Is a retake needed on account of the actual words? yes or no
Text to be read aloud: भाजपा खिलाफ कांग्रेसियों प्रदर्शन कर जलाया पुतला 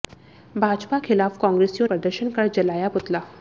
no